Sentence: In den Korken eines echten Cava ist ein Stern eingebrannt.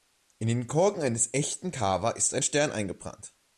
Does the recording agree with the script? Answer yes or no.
yes